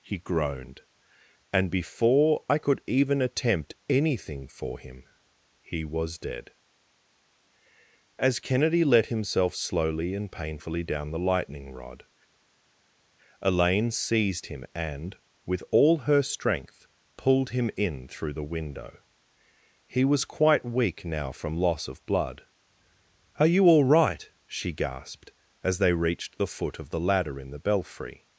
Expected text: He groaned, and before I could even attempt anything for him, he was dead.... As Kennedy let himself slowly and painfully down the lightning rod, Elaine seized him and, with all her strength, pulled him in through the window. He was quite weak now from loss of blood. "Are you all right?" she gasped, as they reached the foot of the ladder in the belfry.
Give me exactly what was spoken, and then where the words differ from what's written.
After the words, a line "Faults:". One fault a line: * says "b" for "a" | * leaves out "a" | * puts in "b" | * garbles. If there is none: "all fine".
He groaned, and before I could even attempt anything for him, he was dead.... As Kennedy let himself slowly and painfully down the lightning rod, Elaine seized him and, with all her strength, pulled him in through the window. He was quite weak now from loss of blood. "Are you all right?" she gasped, as they reached the foot of the ladder in the belfry.
Faults:
all fine